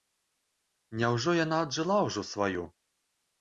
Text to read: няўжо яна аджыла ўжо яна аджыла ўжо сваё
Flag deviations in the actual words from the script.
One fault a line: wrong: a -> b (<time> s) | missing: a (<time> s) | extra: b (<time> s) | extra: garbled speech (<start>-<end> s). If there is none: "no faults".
missing: яна аджыла ўжо (2.2 s)